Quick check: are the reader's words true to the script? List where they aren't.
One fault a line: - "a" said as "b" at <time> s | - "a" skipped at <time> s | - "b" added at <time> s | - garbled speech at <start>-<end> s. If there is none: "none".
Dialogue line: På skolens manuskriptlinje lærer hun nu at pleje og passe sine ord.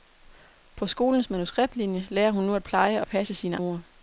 none